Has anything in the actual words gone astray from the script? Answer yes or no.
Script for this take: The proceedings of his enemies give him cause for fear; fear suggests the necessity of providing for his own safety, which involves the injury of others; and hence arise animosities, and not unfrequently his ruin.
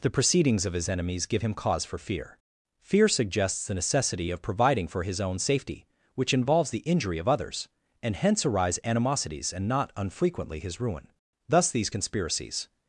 yes